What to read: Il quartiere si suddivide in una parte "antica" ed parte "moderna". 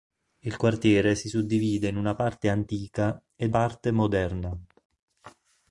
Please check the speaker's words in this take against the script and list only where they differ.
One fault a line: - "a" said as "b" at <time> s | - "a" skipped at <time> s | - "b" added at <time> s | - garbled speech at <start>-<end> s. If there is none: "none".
none